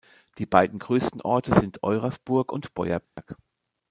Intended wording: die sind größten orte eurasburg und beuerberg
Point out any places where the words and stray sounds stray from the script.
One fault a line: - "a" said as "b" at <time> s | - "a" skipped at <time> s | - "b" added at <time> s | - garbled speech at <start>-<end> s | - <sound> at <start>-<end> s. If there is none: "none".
- "sind" said as "beiden" at 0.5 s
- "sind" added at 1.5 s
- dropout at 3.0-3.2 s